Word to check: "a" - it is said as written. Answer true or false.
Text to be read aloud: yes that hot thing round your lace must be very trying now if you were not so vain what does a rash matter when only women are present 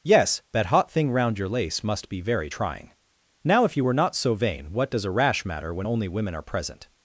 true